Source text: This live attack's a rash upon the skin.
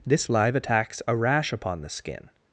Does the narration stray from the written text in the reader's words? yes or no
no